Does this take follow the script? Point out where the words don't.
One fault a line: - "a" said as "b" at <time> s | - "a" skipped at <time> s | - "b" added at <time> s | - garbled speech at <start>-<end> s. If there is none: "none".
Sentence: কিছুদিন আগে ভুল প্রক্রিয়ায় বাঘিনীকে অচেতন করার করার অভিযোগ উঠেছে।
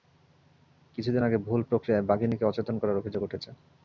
- "করার" skipped at 3.0 s